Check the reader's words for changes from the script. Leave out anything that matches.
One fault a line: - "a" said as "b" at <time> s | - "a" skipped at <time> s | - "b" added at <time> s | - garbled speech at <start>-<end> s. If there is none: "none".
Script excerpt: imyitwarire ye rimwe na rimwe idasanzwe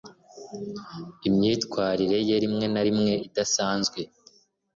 none